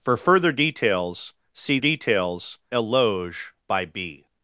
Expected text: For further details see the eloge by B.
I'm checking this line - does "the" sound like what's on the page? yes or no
no